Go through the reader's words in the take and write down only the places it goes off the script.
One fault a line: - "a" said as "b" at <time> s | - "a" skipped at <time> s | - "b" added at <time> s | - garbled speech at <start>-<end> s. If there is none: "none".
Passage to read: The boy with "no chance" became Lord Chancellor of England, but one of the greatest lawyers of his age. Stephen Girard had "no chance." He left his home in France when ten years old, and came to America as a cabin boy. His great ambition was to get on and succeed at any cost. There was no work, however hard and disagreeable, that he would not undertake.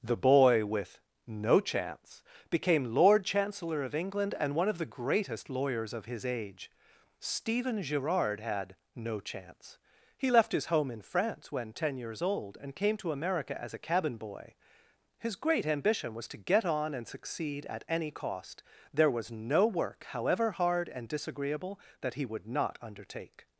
- "but" said as "and" at 4.4 s